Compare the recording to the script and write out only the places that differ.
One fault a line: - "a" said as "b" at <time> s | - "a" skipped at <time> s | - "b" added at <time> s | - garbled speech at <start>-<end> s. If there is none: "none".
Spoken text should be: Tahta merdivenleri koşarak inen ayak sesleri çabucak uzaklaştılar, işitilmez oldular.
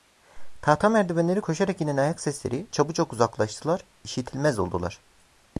none